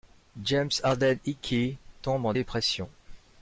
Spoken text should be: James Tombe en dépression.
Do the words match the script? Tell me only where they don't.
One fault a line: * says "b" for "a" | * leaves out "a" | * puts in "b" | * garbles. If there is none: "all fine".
* puts in "Harden Hickey"